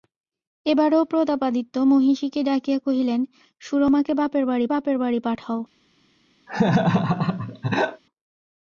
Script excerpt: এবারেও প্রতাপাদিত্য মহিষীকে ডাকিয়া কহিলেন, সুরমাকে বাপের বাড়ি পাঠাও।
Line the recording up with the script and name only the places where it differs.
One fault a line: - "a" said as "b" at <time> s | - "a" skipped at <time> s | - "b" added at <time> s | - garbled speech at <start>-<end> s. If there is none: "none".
- "বাপের বাড়ি" added at 4.7 s